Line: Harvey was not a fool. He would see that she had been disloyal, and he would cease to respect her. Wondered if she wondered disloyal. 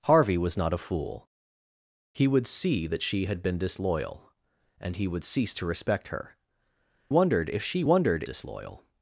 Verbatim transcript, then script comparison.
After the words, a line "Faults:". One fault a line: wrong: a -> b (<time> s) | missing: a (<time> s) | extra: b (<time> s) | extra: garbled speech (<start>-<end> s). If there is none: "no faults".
Harvey was not a fool. He would see that she had been disloyal, and he would cease to respect her. Wondered if she wondered disloyal.
Faults:
no faults